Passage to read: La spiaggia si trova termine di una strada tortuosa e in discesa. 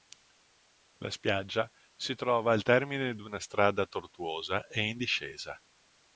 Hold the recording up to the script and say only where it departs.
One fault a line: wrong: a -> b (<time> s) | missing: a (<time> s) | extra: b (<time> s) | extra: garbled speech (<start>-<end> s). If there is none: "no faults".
extra: al (2.5 s)